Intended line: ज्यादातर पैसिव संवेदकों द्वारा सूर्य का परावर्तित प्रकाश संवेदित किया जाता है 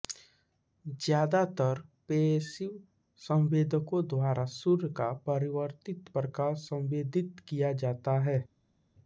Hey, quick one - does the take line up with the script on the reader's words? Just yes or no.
yes